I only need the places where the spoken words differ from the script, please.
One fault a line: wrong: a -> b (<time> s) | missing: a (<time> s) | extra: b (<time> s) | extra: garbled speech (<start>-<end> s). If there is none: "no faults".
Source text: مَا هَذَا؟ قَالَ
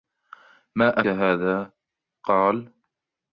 no faults